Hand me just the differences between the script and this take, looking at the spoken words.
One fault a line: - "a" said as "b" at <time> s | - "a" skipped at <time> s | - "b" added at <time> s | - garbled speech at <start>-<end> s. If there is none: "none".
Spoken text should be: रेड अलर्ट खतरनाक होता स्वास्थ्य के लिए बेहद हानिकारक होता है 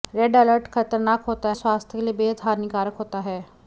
none